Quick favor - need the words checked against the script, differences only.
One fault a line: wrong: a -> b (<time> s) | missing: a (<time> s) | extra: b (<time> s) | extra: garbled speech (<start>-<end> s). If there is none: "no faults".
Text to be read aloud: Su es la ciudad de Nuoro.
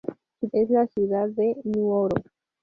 no faults